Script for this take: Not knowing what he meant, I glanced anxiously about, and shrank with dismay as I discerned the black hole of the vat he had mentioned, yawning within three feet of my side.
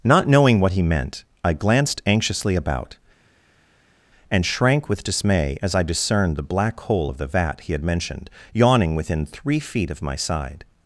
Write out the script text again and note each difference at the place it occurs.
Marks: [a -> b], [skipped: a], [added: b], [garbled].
Not knowing what he meant, I glanced anxiously about, and shrank with dismay as I discerned the black hole of the vat he had mentioned, yawning within three feet of my side.